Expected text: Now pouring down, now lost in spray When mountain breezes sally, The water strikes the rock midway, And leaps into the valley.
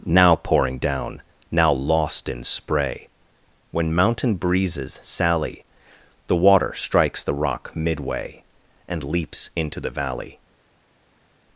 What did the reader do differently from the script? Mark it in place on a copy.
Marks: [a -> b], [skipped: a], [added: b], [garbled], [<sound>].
Now pouring down, now lost in spray When mountain breezes sally, The water strikes the rock midway, And leaps into the valley.